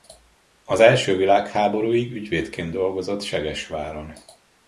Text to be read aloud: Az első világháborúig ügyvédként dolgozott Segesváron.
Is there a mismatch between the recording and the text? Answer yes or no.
no